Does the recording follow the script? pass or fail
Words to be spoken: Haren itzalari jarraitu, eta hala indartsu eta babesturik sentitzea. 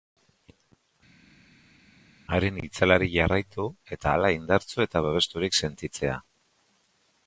pass